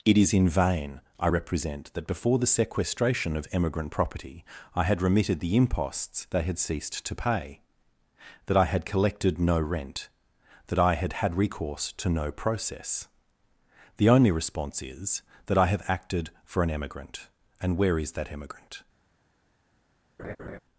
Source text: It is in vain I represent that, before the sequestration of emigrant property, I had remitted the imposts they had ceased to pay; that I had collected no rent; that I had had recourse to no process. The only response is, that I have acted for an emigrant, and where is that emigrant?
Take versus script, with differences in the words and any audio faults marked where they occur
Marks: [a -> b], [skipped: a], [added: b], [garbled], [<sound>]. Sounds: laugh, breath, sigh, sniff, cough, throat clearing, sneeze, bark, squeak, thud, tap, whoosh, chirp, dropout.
It is in vain I represent that, before the sequestration of emigrant property, I had remitted the imposts they had ceased to pay; that I had collected no rent; that I had had recourse to no process. The only response is, that I have acted for an emigrant, and where is that emigrant? [laugh]